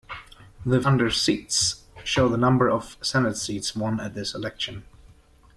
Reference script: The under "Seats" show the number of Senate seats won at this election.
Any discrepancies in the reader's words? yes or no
no